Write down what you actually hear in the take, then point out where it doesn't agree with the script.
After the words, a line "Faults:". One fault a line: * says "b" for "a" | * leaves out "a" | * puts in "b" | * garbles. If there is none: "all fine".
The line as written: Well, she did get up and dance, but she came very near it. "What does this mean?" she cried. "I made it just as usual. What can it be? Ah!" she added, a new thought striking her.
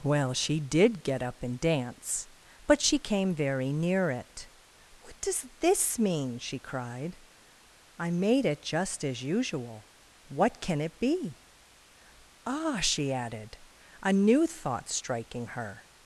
Well, she did get up and dance, but she came very near it. "What does this mean?" she cried. "I made it just as usual. What can it be? Ah!" she added, a new thought striking her.
Faults:
all fine